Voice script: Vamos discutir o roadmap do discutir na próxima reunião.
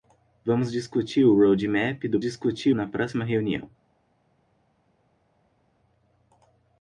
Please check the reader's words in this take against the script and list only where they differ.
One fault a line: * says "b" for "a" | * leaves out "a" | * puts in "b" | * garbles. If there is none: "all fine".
all fine